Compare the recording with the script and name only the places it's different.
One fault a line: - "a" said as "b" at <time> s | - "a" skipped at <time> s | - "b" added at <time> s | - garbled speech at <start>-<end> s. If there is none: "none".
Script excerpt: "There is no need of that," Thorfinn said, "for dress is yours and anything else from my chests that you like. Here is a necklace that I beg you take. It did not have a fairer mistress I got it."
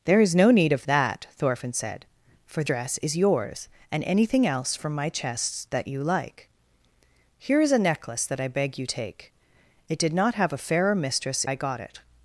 none